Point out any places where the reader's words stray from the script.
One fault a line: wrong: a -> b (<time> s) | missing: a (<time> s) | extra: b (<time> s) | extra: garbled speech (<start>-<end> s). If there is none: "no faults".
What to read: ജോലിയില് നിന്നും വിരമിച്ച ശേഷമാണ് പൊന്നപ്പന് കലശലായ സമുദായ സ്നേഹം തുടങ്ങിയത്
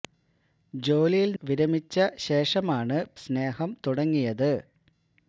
missing: നിന്നും (1.4 s)
missing: പൊന്നപ്പന് കലശലായ സമുദായ (3.0 s)